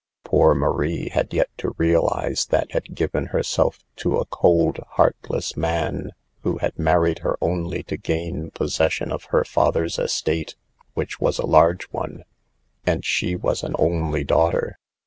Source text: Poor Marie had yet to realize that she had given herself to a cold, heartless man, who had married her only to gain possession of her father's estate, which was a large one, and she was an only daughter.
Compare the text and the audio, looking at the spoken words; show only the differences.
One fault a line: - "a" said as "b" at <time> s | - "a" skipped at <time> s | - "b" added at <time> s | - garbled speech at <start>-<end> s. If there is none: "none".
- "she" skipped at 2.7 s